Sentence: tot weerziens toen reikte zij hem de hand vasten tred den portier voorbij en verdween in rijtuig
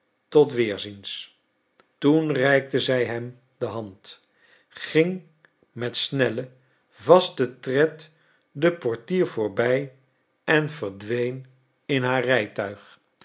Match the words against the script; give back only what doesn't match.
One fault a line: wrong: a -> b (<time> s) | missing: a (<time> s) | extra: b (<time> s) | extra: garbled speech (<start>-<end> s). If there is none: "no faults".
extra: ging met snellen (4.7 s)
extra: haar (12.0 s)